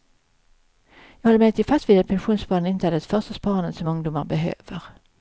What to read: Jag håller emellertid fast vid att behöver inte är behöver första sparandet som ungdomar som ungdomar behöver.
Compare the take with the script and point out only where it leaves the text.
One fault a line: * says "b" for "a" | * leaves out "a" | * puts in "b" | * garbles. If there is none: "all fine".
* says "pensionssparande" for "behöver"
* says "det" for "behöver"
* leaves out "som ungdomar"